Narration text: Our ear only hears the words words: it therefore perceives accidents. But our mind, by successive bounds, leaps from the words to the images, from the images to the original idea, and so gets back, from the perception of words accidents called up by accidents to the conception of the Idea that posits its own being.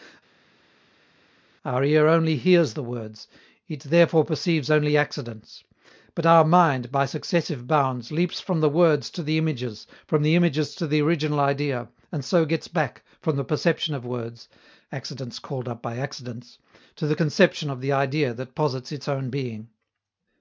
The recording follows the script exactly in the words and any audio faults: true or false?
false